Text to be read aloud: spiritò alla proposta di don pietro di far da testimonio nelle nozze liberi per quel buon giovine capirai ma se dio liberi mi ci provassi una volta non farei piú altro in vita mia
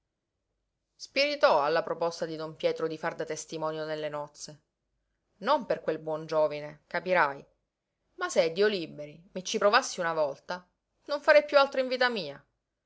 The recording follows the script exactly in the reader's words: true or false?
false